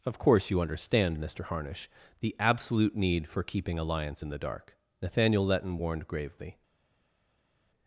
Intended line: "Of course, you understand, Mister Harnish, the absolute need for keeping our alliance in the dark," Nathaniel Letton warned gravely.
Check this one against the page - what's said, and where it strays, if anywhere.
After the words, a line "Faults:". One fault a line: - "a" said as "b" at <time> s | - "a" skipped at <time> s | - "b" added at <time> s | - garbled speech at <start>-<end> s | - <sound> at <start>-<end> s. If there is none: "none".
"Of course, you understand, Mister Harnish, the absolute need for keeping alliance in the dark," Nathaniel Letton warned gravely.
Faults:
- "our" skipped at 3.8 s